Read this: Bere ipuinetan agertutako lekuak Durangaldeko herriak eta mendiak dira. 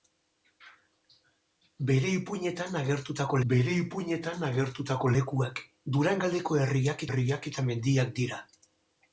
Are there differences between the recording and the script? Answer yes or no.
yes